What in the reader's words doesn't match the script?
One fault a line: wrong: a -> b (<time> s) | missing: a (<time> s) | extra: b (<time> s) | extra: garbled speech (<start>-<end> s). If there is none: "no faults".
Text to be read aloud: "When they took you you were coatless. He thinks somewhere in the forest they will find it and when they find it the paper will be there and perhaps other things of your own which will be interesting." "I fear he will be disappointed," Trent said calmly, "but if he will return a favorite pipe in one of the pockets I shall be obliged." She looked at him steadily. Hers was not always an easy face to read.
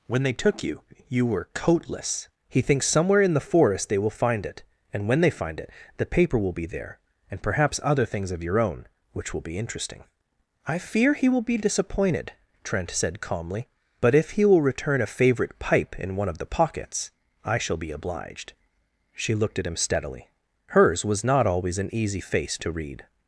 no faults